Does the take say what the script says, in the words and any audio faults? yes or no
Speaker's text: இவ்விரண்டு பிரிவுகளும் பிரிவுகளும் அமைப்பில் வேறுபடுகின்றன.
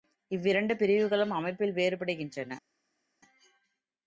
no